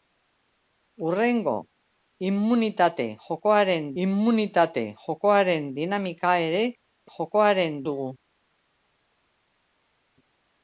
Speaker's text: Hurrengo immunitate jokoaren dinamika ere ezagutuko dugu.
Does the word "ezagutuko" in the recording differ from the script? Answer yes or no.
yes